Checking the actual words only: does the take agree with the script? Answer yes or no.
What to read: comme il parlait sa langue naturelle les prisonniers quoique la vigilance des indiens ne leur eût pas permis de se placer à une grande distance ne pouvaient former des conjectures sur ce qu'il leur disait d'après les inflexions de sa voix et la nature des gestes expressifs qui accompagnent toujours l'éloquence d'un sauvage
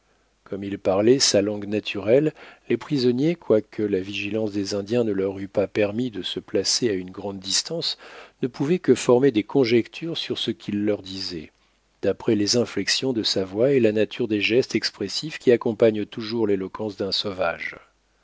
no